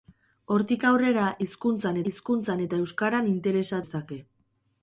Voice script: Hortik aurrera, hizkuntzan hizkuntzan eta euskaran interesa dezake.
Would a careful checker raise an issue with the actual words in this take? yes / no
no